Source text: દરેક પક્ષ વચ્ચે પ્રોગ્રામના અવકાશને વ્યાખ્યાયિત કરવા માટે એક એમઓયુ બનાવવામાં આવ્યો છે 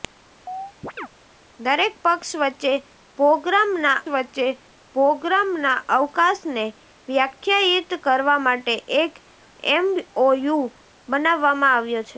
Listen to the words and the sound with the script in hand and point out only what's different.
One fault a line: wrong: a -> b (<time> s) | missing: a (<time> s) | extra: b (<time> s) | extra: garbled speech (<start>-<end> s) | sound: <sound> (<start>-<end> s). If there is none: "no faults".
sound: chirp (0.5-1.1 s)
extra: વચ્ચે પ્રોગ્રામના (4.1 s)